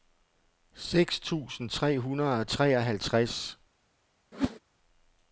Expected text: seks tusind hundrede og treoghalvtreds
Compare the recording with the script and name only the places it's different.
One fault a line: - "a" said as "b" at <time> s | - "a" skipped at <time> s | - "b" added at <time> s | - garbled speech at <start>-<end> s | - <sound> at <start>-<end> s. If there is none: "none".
- "tre" added at 1.7 s
- whoosh at 4.3-4.6 s